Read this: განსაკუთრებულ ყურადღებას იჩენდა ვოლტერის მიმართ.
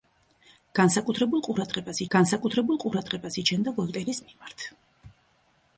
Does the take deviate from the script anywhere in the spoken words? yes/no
yes